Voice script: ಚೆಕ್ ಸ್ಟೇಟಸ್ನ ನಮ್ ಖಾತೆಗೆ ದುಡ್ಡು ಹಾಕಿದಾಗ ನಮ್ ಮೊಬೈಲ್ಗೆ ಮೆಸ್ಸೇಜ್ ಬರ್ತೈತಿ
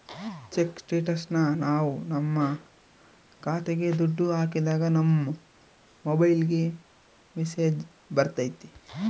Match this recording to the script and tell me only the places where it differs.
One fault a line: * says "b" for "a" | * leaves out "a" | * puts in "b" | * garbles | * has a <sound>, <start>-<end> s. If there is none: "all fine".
* puts in "ನಾವ್"